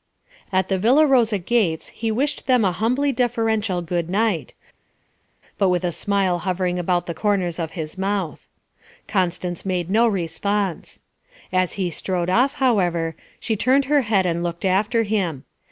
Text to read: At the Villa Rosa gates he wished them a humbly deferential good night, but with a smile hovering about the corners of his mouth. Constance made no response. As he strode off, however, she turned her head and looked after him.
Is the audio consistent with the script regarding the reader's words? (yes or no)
yes